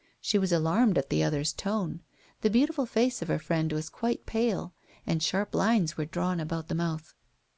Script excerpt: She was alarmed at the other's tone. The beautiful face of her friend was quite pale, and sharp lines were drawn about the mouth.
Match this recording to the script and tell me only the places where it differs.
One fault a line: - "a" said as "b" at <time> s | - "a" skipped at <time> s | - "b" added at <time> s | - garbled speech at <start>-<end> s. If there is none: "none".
none